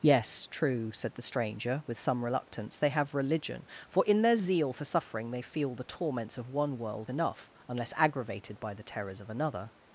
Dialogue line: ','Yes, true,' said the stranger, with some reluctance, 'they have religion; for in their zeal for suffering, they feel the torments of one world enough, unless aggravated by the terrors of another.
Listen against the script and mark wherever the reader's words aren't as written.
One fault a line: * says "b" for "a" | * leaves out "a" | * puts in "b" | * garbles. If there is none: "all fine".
all fine